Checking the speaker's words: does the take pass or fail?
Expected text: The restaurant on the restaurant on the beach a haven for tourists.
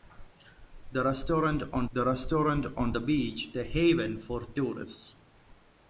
pass